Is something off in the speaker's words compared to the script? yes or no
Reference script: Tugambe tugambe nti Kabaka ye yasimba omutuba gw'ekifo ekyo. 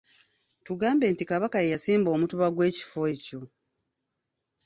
yes